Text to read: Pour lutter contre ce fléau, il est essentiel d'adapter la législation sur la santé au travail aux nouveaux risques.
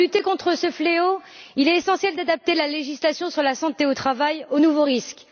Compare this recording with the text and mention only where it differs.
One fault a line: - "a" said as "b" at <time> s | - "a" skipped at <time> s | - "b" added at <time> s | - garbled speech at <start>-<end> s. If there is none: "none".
none